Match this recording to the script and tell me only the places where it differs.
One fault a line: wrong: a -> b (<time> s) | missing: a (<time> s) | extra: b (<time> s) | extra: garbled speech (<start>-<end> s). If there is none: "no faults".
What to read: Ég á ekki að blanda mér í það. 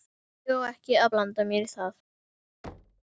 no faults